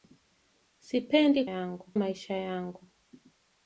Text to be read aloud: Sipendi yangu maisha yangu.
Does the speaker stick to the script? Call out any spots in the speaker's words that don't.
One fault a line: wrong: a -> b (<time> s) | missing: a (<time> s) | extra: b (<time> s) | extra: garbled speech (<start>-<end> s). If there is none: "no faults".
no faults